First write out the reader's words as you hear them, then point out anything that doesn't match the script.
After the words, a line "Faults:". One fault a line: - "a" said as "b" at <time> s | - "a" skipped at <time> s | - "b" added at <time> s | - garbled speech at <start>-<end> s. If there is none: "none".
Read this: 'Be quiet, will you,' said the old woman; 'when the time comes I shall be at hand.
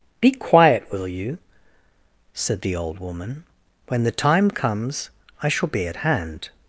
'Be quiet, will you,' said the old woman; 'when the time comes I shall be at hand.
Faults:
none